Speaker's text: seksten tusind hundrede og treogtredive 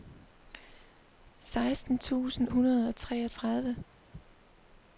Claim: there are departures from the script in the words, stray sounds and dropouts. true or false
false